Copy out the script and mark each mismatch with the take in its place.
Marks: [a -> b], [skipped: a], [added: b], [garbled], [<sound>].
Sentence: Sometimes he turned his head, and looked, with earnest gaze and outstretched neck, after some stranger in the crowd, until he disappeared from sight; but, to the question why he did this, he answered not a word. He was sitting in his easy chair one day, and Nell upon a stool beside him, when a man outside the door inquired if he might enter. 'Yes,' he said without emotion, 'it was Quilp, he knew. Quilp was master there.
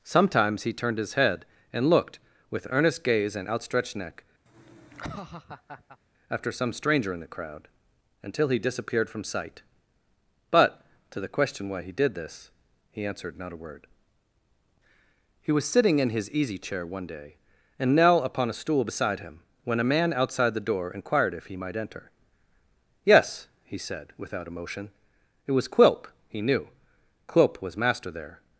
Sometimes he turned his head, and looked, with earnest gaze and outstretched neck, [laugh] after some stranger in the crowd, until he disappeared from sight; but, to the question why he did this, he answered not a word. He was sitting in his easy chair one day, and Nell upon a stool beside him, when a man outside the door inquired if he might enter. 'Yes,' he said without emotion, 'it was Quilp, he knew. Quilp was master there.